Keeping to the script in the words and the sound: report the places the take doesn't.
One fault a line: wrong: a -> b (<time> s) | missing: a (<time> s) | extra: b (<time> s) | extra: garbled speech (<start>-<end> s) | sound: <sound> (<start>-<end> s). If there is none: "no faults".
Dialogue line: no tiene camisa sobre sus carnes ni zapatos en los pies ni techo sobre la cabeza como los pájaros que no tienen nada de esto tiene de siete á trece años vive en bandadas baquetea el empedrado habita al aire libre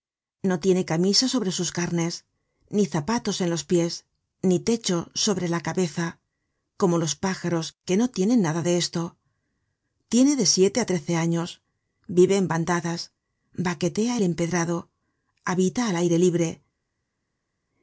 no faults